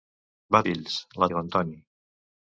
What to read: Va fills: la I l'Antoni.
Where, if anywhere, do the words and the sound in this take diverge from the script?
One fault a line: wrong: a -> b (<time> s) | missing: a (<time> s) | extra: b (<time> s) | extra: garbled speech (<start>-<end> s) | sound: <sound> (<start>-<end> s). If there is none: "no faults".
no faults